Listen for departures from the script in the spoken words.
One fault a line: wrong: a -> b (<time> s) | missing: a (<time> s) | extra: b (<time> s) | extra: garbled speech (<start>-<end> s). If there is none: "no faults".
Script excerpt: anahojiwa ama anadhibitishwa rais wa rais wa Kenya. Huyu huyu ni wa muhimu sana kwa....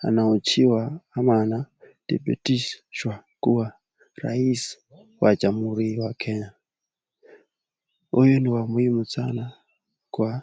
extra: kuwa (3.4 s)
wrong: rais -> jamhuri (5.3 s)
missing: huyu (8.4 s)